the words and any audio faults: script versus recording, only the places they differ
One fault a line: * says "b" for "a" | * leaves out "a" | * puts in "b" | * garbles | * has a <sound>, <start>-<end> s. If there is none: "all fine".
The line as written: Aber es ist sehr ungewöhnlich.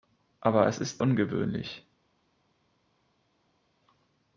* leaves out "sehr"